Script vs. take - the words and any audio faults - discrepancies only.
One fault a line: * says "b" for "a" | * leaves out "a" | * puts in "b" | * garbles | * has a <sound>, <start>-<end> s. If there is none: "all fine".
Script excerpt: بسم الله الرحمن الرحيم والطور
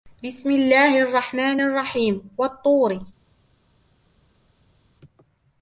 all fine